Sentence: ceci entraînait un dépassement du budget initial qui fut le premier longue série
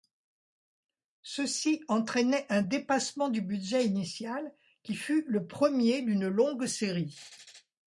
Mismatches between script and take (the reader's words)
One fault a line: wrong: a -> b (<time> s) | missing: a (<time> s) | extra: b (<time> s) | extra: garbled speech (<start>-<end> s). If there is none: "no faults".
extra: d'une (6.0 s)